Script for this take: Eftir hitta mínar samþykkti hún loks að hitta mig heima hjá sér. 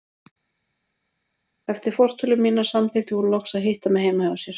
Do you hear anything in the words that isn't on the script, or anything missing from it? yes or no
yes